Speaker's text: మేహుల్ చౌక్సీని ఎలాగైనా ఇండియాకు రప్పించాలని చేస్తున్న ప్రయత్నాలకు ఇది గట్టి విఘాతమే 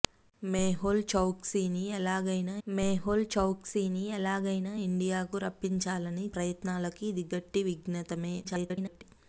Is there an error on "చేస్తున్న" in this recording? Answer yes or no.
yes